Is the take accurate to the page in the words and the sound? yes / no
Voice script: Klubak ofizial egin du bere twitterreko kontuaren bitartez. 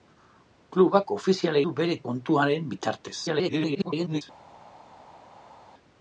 no